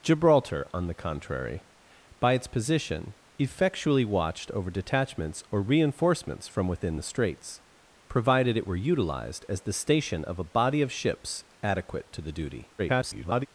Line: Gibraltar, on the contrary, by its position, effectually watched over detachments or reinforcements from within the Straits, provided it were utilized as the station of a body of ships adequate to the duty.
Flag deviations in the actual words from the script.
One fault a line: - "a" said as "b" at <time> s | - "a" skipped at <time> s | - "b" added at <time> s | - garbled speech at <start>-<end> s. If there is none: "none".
- garbled speech at 12.8-13.5 s